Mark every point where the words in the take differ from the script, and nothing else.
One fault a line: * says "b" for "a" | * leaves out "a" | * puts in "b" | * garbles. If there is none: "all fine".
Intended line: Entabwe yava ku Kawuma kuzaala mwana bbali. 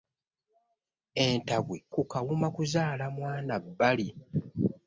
* leaves out "yava"